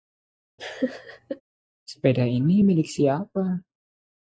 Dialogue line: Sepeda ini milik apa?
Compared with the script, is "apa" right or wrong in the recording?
wrong